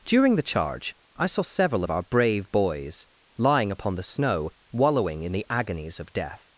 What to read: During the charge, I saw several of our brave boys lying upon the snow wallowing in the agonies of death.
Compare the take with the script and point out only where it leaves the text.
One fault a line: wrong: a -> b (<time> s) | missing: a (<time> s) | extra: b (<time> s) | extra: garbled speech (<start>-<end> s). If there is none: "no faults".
no faults